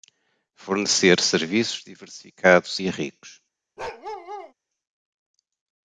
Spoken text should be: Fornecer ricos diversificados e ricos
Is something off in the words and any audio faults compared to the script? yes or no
yes